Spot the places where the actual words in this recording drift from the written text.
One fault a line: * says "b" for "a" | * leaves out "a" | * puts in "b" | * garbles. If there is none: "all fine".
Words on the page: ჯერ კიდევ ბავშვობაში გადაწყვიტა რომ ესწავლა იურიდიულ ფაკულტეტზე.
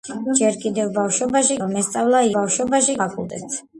* leaves out "გადაწყვიტა"
* says "ბავშვობაში" for "იურიდიულ"